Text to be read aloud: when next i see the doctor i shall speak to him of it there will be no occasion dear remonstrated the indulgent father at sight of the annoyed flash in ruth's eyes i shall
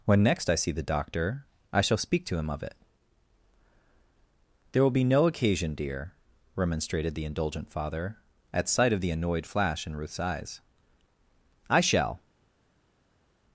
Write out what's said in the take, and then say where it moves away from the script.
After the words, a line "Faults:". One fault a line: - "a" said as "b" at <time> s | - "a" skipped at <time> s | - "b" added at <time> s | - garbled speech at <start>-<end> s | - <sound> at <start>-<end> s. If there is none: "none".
when next i see the doctor i shall speak to him of it there will be no occasion dear remonstrated the indulgent father at sight of the annoyed flash in ruth's eyes i shall
Faults:
none